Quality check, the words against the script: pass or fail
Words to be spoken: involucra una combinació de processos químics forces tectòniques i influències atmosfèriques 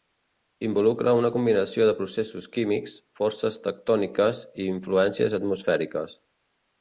pass